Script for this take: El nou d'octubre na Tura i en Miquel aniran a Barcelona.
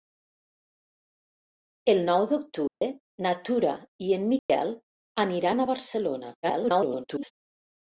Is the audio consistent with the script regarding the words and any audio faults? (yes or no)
no